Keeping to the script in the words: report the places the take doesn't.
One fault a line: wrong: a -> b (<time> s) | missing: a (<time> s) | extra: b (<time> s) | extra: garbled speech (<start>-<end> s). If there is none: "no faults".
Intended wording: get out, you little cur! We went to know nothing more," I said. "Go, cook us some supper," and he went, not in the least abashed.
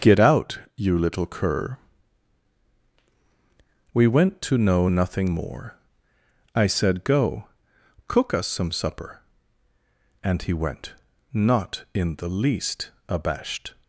no faults